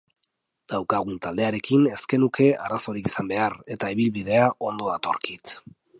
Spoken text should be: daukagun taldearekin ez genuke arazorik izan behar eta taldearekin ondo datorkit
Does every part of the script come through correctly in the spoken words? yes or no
no